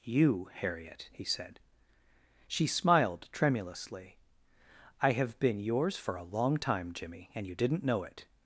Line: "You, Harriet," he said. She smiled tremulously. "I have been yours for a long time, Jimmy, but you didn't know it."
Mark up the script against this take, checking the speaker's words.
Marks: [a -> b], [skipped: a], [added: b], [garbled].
"You, Harriet," he said. She smiled tremulously. "I have been yours for a long time, Jimmy, [but -> and] you didn't know it."